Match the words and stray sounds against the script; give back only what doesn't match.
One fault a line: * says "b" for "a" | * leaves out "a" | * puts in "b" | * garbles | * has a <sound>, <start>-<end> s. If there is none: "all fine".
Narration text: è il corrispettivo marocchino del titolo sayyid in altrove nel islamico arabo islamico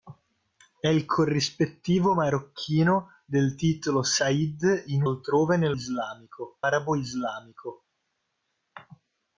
all fine